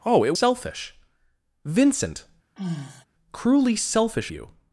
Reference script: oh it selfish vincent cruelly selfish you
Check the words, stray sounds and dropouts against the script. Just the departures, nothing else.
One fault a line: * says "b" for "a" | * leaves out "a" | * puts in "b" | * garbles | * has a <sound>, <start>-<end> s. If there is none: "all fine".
* has a sigh, 2.6-3.0 s